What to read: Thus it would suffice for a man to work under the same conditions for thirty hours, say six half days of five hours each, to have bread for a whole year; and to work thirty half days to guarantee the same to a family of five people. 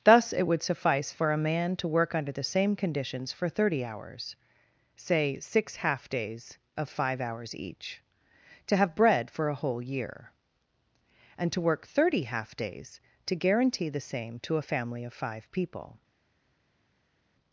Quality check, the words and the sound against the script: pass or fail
pass